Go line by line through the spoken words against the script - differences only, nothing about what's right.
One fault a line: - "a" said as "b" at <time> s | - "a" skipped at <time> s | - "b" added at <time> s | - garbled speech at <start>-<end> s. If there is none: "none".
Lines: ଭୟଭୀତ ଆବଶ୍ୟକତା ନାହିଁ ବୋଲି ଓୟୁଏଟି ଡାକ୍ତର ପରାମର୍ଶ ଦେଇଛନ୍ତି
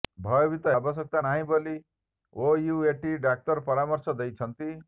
none